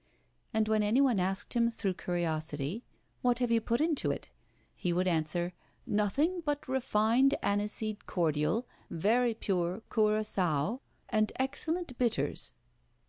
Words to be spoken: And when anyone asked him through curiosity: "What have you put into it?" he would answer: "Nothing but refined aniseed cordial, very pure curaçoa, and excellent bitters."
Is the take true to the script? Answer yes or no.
yes